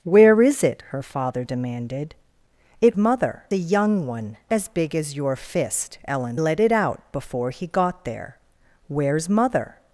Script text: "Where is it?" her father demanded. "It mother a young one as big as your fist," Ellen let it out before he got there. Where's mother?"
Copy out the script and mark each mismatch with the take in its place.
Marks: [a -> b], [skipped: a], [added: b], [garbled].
"Where is it?" her father demanded. "It mother a young one as big as your fist," Ellen let it out before he got there. Where's mother?"